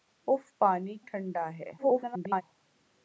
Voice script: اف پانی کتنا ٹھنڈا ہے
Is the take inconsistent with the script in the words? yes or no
yes